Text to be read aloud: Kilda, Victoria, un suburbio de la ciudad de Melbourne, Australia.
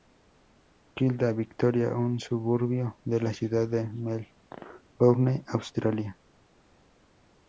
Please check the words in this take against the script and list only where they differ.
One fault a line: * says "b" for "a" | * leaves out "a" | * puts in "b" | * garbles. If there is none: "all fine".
all fine